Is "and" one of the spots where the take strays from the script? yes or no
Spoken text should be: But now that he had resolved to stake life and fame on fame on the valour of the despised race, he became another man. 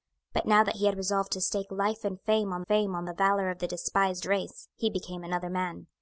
no